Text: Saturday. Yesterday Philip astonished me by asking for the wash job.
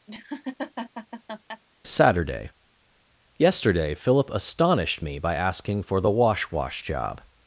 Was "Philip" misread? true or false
false